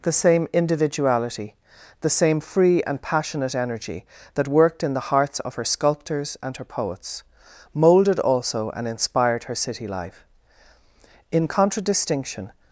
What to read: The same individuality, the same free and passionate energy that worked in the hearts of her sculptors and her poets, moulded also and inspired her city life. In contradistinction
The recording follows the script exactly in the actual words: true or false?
true